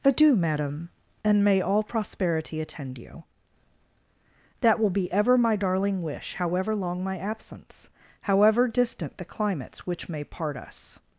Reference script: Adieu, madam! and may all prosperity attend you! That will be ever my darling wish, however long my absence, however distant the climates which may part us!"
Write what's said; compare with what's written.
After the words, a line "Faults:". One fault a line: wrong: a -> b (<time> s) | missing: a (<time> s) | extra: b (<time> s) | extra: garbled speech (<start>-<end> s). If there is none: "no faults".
Adieu, madam! and may all prosperity attend you! That will be ever my darling wish, however long my absence, however distant the climates which may part us!"
Faults:
no faults